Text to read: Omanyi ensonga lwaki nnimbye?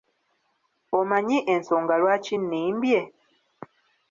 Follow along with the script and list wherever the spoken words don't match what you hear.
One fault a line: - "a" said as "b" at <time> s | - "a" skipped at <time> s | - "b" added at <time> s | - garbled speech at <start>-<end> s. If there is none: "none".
none